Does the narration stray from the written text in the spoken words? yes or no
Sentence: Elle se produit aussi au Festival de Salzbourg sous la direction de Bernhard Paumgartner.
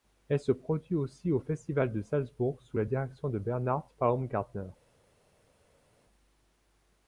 no